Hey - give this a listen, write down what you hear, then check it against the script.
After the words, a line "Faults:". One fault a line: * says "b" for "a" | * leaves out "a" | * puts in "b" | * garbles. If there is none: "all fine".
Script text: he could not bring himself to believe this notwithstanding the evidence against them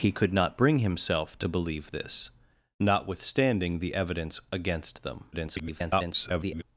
he could not bring himself to believe this notwithstanding the evidence against them [garbled]
Faults:
* garbles